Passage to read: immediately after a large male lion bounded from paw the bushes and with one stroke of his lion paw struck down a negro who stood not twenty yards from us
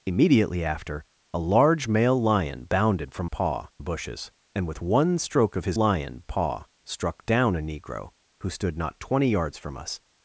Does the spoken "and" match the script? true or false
true